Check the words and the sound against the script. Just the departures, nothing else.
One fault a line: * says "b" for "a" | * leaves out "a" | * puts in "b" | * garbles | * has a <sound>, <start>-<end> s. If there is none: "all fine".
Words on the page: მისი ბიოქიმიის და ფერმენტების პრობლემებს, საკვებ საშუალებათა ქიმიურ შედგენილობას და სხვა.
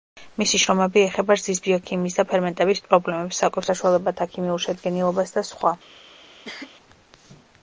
* puts in "შრომები ეხება რძის"
* has a cough, 6.4-6.7 s